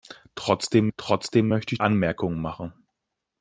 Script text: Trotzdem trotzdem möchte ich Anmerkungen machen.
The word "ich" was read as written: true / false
true